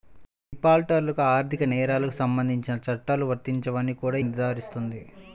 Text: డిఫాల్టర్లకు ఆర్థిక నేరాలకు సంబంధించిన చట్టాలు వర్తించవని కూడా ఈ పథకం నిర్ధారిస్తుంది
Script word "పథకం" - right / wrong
wrong